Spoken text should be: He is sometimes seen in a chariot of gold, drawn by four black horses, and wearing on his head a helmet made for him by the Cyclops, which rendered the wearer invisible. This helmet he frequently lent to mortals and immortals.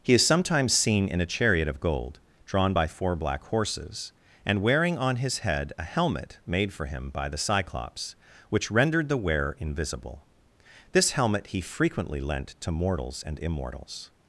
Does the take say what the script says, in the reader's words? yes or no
yes